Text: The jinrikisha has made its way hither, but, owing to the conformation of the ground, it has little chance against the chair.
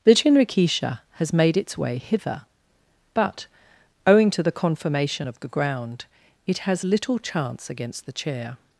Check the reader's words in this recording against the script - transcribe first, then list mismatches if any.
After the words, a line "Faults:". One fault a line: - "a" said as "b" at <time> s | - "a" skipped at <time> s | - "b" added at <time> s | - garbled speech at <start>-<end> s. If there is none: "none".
The jinrikisha has made its way hither, but, owing to the conformation of the ground, it has little chance against the chair.
Faults:
none